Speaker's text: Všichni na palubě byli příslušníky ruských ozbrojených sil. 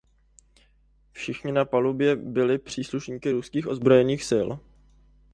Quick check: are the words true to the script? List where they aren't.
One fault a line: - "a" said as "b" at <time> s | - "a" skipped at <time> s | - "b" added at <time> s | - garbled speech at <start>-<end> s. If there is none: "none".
none